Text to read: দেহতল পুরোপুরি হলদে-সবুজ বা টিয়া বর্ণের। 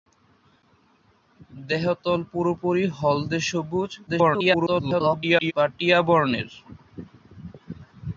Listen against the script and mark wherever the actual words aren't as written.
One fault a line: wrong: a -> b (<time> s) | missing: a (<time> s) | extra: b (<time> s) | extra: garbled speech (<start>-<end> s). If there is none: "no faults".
extra: garbled speech (4.1-5.5 s)